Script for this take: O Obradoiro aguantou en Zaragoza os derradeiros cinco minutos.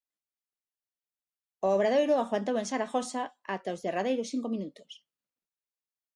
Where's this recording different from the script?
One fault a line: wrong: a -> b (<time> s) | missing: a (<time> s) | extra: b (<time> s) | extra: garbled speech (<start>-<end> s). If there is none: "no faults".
extra: ata (3.5 s)